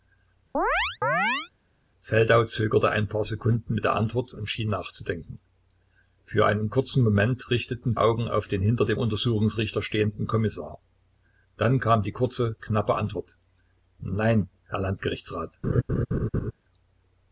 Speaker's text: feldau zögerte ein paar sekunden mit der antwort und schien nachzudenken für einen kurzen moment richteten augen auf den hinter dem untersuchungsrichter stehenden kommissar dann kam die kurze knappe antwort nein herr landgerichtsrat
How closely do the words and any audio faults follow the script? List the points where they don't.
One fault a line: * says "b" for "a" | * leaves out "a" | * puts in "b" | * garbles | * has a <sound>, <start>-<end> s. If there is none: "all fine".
* has a chirp, 0.5-1.5 s
* has a laugh, 15.6-16.5 s